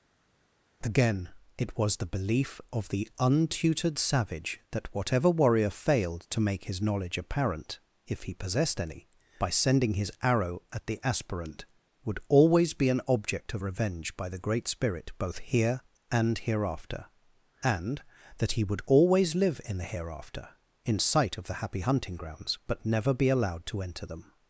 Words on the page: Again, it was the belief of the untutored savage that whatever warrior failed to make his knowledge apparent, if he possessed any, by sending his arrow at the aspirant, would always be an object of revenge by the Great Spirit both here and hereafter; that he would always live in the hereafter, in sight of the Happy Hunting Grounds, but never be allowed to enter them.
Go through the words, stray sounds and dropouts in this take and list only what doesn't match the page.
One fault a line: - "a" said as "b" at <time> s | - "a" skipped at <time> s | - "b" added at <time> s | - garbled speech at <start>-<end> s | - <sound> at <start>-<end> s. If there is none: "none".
- "and" added at 17.6 s